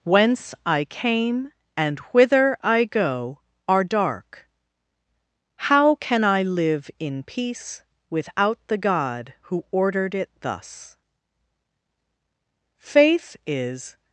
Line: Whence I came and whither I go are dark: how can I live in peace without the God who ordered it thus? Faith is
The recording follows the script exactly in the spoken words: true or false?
true